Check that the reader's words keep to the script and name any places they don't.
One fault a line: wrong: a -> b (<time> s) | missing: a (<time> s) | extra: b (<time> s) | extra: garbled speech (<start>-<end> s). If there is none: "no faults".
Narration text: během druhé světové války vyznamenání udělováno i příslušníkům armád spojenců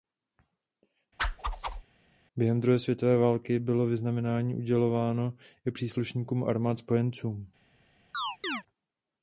extra: bylo (3.6 s)